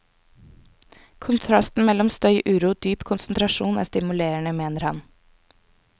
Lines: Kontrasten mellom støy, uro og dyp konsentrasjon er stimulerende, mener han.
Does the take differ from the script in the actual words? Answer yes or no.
no